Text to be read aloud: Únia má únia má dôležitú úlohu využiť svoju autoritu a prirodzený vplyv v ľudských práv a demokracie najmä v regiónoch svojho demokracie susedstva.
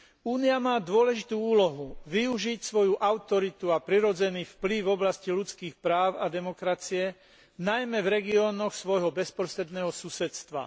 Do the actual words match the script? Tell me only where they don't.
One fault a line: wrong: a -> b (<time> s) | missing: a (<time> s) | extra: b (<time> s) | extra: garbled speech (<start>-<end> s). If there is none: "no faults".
missing: únia má (0.8 s)
extra: oblasti (4.9 s)
wrong: demokracie -> bezprostredného (9.1 s)